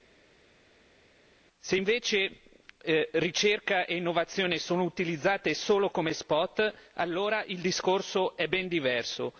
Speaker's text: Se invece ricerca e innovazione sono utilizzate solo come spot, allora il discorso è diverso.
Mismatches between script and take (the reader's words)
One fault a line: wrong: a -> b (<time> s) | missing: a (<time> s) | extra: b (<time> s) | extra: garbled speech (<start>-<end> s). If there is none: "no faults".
extra: ben (8.5 s)